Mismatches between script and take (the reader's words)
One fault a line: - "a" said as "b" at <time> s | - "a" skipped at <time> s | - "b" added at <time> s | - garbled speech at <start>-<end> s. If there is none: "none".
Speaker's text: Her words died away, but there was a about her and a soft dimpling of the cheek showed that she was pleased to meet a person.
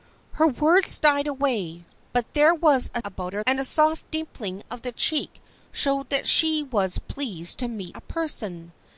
none